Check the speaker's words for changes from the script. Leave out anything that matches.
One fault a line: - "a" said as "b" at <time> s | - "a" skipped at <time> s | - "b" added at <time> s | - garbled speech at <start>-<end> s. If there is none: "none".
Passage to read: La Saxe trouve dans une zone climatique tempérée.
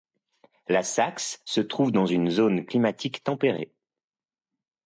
- "se" added at 1.4 s